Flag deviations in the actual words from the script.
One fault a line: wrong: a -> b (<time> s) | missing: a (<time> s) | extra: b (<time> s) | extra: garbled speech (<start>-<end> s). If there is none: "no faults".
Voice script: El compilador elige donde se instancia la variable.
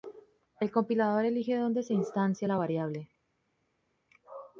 no faults